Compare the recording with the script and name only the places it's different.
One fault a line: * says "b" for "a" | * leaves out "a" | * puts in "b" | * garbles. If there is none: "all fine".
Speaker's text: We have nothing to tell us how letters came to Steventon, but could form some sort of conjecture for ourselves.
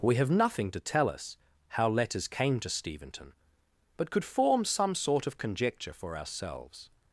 all fine